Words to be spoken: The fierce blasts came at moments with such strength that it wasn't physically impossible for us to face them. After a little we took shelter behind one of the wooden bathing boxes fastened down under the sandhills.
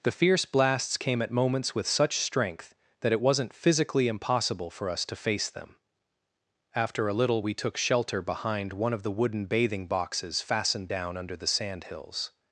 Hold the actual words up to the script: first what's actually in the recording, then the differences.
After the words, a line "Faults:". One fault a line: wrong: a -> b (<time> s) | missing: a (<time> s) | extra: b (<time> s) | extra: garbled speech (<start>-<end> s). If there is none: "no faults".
The fierce blasts came at moments with such strength that it wasn't physically impossible for us to face them. After a little we took shelter behind one of the wooden bathing boxes fastened down under the sandhills.
Faults:
no faults